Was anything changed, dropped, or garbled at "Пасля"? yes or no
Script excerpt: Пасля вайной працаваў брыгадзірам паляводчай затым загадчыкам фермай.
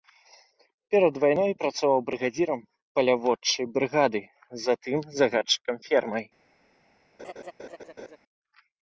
yes